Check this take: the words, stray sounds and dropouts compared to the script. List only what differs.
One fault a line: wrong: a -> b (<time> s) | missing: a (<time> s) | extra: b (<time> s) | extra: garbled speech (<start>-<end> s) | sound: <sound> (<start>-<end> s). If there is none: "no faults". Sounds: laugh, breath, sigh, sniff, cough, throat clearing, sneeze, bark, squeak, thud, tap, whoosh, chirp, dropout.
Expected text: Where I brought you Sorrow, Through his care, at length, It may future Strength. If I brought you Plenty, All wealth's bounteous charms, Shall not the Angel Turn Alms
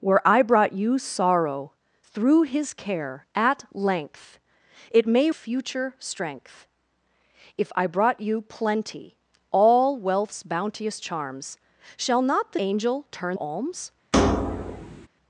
sound: thud (14.1-15.1 s)